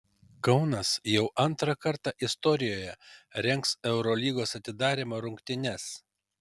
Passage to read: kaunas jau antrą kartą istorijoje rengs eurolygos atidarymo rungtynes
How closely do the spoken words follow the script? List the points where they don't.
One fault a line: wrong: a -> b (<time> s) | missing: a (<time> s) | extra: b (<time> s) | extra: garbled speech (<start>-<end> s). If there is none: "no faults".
no faults